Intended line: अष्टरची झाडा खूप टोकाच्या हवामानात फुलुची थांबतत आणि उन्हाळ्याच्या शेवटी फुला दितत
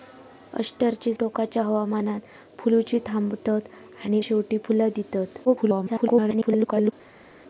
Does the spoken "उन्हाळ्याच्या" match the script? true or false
false